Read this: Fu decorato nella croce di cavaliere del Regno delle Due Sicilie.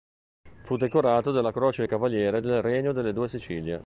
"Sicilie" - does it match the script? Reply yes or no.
yes